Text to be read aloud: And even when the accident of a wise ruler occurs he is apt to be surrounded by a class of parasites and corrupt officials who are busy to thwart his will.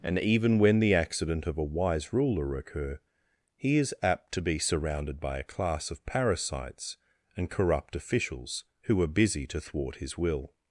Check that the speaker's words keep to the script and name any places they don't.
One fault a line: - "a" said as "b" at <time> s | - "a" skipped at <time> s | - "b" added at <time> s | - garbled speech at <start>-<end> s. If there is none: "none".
- "occurs" said as "occur" at 2.5 s